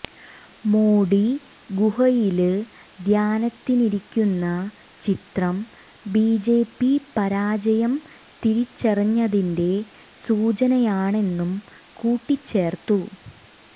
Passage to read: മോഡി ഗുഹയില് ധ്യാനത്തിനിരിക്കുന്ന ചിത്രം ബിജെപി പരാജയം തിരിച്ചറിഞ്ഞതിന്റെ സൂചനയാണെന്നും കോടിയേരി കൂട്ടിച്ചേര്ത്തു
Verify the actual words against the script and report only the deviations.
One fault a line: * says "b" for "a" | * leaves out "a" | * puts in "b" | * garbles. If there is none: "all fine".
* leaves out "കോടിയേരി"